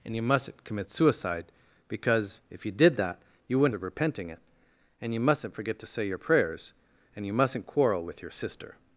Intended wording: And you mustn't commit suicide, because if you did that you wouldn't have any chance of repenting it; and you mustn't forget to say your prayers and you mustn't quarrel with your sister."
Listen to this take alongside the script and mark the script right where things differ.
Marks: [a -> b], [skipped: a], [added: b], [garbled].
And you mustn't commit suicide, because if you did that you wouldn't [skipped: have any chance] of repenting it; and you mustn't forget to say your prayers and you mustn't quarrel with your sister."